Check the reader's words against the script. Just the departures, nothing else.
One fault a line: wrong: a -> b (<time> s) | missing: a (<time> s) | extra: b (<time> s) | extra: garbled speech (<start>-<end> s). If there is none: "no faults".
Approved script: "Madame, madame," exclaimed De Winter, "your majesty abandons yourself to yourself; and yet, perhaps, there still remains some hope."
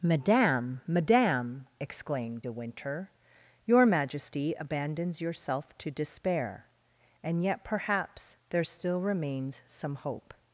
wrong: yourself -> despair (5.9 s)